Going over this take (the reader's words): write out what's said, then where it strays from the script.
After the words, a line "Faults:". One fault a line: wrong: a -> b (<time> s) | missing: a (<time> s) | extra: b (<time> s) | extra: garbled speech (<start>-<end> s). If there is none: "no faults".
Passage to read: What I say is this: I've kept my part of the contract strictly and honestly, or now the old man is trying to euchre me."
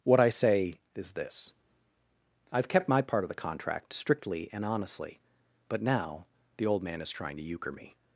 What I say is this: I've kept my part of the contract strictly and honestly, but now the old man is trying to euchre me."
Faults:
wrong: or -> but (5.7 s)